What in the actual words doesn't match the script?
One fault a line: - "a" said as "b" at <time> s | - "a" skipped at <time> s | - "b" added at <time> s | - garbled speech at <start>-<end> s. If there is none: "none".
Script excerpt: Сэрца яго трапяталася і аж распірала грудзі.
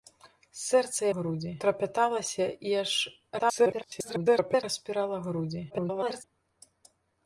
- "яго" said as "грудзі" at 1.2 s
- garbled speech at 3.4-4.6 s
- garbled speech at 5.7-6.2 s